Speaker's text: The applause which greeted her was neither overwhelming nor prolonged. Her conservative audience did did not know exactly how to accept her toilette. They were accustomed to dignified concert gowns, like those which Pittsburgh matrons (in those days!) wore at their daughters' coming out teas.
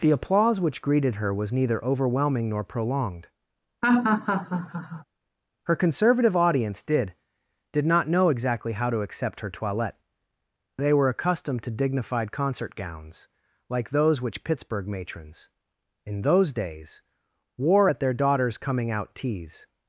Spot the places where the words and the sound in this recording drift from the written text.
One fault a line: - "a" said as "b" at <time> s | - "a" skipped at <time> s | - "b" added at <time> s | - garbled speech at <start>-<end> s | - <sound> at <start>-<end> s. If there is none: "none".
- laugh at 3.8-5.0 s